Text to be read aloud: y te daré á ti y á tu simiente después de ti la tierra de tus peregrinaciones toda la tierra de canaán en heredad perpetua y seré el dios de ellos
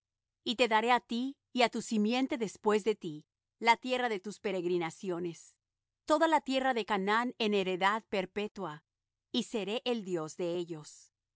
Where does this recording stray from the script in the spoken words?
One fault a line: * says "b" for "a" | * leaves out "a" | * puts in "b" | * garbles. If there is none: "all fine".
all fine